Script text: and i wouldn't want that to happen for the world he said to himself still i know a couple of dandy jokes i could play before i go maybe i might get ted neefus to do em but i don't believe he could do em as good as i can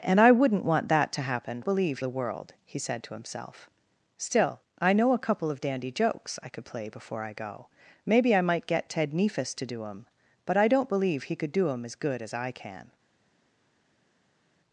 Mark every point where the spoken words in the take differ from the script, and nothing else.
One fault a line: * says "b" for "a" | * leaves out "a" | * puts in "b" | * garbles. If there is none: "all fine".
* says "believe" for "for"